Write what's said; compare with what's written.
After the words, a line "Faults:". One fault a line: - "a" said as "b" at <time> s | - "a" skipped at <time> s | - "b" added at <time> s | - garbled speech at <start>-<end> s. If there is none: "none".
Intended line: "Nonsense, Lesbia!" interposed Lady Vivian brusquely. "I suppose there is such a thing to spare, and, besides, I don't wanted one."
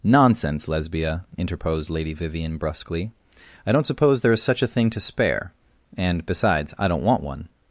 "Nonsense, Lesbia!" interposed Lady Vivian brusquely. "I don't suppose there is such a thing to spare, and, besides, I don't want one."
Faults:
- "don't" added at 3.7 s
- "wanted" said as "want" at 7.0 s